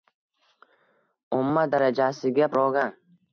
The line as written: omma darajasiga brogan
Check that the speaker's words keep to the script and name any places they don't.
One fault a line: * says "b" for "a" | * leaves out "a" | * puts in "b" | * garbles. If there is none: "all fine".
all fine